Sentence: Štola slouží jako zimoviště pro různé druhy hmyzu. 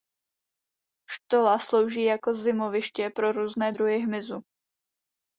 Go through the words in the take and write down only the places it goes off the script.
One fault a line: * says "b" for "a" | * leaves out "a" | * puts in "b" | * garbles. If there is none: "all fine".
all fine